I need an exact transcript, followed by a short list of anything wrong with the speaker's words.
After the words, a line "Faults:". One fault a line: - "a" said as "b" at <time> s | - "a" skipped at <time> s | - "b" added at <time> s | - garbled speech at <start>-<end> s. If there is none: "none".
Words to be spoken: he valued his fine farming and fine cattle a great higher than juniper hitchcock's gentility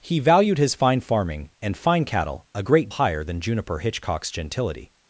he valued his fine farming and fine cattle a great higher than juniper hitchcock's gentility
Faults:
none